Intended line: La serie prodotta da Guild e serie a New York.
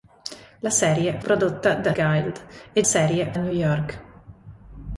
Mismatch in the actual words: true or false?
false